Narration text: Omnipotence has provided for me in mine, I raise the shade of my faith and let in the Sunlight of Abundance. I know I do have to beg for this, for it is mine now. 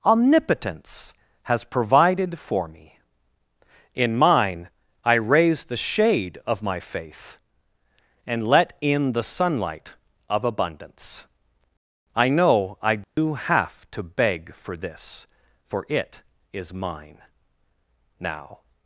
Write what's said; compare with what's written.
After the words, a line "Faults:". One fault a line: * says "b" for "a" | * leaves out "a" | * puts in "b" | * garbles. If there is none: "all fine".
Omnipotence has provided for me in mine, I raise the shade of my faith and let in the Sunlight of Abundance. I know I do have to beg for this, for it is mine now.
Faults:
all fine